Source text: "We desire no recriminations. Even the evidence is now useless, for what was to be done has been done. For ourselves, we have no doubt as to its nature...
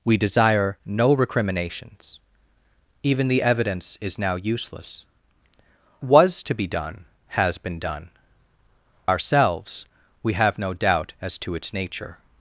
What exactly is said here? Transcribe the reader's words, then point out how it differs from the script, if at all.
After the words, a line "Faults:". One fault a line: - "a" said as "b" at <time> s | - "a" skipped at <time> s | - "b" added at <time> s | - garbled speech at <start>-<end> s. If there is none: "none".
"We desire no recriminations. Even the evidence is now useless, was to be done has been done. Ourselves, we have no doubt as to its nature...
Faults:
- "for what" skipped at 5.0 s
- "For" skipped at 8.1 s